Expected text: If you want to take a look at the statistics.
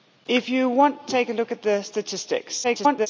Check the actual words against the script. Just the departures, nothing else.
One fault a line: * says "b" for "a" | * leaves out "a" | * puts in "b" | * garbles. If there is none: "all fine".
* garbles